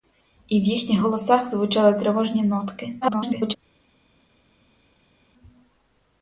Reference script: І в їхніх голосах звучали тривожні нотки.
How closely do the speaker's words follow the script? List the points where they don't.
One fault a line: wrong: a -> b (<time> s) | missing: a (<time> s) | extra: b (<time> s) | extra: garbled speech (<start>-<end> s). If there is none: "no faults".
extra: garbled speech (3.0-3.6 s)